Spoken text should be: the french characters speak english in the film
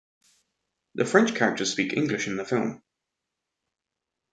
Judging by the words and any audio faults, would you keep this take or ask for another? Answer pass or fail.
pass